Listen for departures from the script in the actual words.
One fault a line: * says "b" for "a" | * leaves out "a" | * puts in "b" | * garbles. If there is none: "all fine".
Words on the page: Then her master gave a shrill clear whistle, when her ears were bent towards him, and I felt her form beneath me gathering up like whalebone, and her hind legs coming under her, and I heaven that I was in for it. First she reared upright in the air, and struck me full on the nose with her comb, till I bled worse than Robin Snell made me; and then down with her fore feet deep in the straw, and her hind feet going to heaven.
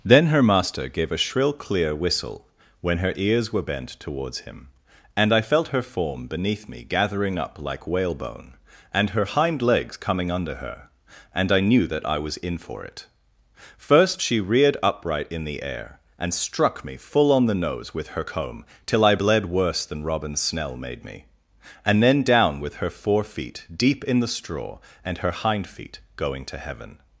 * says "knew" for "heaven"